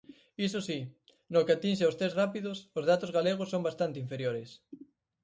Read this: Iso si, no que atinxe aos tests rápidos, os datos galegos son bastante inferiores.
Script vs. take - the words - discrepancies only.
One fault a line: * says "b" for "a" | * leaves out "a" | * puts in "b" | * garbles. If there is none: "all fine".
all fine